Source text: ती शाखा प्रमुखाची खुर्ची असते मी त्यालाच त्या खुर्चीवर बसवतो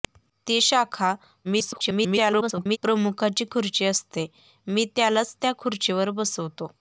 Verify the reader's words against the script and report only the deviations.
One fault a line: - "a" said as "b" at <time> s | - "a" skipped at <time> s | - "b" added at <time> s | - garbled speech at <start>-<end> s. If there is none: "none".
- garbled speech at 1.4-2.8 s